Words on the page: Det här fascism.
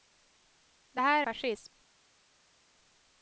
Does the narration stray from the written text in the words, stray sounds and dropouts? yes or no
no